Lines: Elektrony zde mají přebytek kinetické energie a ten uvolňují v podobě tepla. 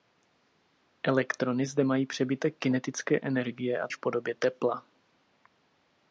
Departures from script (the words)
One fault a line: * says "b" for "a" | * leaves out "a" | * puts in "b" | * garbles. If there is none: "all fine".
* leaves out "ten uvolňují"